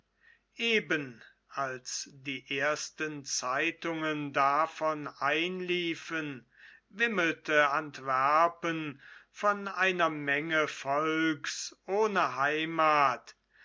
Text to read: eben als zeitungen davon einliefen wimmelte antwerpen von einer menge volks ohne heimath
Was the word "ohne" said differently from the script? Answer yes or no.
no